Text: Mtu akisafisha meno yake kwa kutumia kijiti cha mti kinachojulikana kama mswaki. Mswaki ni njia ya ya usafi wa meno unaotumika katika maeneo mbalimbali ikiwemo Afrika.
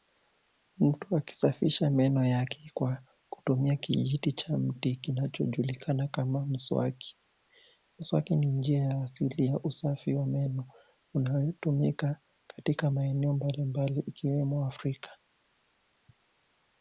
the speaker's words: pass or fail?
fail